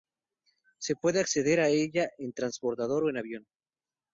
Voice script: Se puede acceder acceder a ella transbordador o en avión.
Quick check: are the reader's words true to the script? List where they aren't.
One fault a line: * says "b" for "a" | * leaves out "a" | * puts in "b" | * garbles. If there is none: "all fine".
* leaves out "acceder"
* puts in "en"